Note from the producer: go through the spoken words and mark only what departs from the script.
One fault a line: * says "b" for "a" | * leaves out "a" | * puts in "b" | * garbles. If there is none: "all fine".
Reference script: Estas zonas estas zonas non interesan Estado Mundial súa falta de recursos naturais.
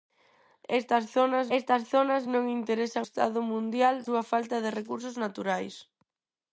all fine